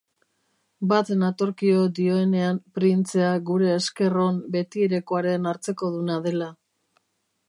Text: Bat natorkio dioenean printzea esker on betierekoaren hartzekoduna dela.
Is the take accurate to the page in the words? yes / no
no